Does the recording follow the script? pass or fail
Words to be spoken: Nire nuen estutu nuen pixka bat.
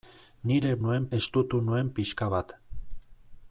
pass